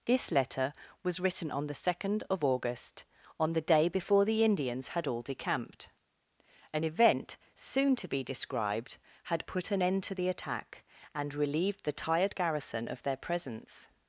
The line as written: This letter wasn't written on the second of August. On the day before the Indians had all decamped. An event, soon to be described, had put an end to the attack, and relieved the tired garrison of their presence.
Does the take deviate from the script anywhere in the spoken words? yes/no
yes